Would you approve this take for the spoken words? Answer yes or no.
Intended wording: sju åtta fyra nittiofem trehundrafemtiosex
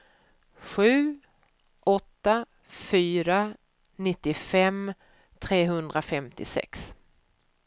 yes